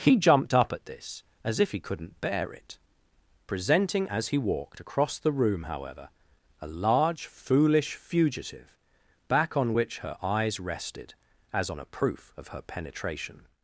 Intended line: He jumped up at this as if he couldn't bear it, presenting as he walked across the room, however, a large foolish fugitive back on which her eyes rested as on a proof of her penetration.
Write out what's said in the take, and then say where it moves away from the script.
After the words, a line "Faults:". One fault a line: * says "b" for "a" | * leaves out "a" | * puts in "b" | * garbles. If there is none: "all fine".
He jumped up at this as if he couldn't bear it, presenting as he walked across the room, however, a large foolish fugitive back on which her eyes rested as on a proof of her penetration.
Faults:
all fine